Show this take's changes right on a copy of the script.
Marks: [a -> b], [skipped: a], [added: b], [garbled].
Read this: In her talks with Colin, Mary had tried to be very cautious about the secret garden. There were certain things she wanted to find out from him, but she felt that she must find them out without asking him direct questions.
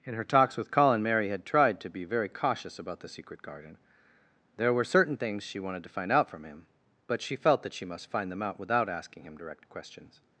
In her talks with Colin, Mary had tried to be very cautious about the secret garden. There were certain things she wanted to find out from him, but she felt that she must find them out without asking him direct questions.